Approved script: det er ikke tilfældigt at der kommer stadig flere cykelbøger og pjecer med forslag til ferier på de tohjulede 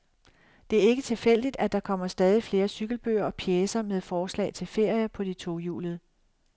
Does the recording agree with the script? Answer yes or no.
yes